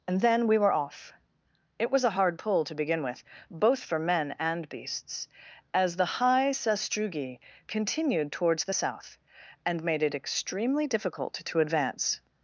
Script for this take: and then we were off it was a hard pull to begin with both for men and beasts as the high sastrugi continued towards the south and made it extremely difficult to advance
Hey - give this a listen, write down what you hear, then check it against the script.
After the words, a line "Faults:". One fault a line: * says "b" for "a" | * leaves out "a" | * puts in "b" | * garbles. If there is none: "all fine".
and then we were off it was a hard pull to begin with both for men and beasts as the high sastrugi continued towards the south and made it extremely difficult to advance
Faults:
all fine